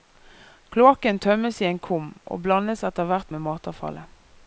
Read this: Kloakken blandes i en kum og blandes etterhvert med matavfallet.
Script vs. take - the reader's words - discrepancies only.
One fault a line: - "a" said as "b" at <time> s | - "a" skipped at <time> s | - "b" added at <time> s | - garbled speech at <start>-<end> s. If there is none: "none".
- "blandes" said as "tømmes" at 1.2 s